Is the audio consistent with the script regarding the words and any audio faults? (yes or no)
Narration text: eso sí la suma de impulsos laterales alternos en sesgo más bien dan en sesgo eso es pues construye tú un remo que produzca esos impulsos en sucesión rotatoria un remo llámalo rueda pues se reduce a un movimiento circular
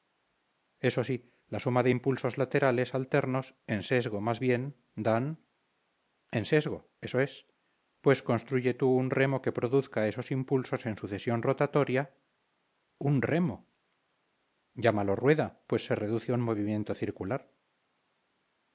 yes